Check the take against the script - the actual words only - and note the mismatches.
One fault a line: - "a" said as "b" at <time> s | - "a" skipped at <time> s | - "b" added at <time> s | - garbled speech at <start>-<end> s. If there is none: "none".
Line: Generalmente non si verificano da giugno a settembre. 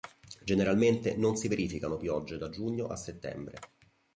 - "piogge" added at 2.0 s